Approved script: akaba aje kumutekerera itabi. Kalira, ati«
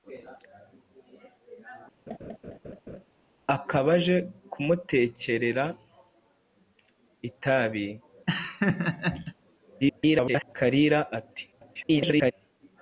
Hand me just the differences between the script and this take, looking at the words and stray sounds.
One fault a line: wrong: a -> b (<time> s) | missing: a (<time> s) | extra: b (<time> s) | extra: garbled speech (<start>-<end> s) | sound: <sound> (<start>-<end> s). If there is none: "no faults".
sound: laugh (2.1-3.0 s)
sound: laugh (8.3-9.4 s)
extra: garbled speech (9.8-10.5 s)
extra: garbled speech (11.5-12.3 s)